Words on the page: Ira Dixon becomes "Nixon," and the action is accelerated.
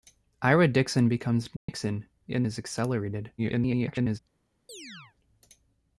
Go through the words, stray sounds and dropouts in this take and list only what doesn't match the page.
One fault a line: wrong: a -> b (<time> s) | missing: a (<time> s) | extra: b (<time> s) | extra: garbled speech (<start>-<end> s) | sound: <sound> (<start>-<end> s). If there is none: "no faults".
sound: dropout (1.6-1.7 s)
missing: the action (2.5 s)
extra: garbled speech (3.4-4.2 s)
sound: chirp (4.7-5.2 s)